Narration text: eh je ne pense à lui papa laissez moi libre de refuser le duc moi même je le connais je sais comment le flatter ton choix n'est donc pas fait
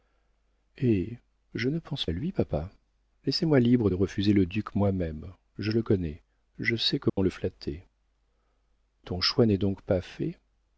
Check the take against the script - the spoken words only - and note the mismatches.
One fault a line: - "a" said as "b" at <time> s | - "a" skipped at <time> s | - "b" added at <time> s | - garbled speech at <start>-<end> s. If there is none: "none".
none